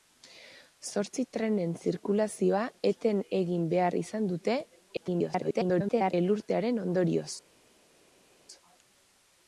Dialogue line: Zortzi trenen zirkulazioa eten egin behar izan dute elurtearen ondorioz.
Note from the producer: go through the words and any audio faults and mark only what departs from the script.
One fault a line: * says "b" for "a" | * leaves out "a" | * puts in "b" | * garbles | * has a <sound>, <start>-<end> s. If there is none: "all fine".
* garbles